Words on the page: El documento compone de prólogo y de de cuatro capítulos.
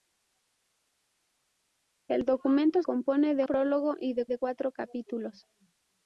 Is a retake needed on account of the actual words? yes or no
no